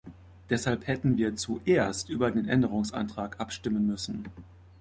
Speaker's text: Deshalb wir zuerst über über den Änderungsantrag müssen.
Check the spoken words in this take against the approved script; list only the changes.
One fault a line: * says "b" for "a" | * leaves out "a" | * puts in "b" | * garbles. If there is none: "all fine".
* puts in "hätten"
* leaves out "über"
* puts in "abstimmen"